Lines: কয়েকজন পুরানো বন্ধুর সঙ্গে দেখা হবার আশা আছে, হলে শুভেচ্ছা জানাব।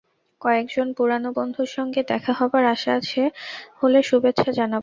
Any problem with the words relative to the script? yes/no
no